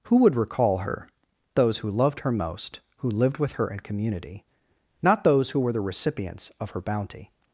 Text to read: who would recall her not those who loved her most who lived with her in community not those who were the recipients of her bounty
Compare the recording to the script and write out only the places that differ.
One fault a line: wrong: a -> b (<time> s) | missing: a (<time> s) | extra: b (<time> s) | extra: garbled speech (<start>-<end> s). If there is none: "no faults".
missing: not (1.1 s)